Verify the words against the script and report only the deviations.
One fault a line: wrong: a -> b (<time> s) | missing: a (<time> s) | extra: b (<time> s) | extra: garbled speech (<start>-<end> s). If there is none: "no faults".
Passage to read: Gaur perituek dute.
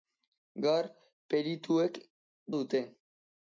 no faults